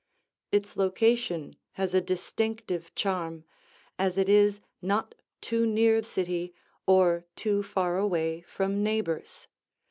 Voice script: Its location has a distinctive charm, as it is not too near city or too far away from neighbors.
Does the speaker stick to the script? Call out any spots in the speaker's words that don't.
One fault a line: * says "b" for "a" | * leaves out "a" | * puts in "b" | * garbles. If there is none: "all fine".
all fine